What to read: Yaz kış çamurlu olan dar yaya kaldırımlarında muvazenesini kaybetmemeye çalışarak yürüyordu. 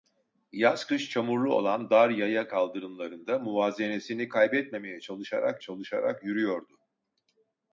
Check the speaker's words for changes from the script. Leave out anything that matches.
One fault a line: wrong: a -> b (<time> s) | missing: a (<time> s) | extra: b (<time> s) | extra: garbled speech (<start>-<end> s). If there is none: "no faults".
extra: çalışarak (5.6 s)